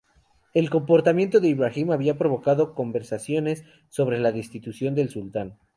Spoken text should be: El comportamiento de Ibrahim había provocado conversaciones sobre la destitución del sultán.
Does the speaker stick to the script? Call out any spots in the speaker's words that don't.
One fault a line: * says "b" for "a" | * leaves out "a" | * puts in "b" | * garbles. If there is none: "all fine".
all fine